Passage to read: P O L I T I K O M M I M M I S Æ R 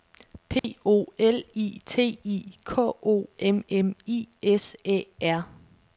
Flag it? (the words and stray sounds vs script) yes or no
yes